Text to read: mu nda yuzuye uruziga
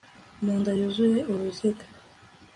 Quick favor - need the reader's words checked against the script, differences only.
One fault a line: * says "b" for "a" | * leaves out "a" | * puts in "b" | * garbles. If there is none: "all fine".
all fine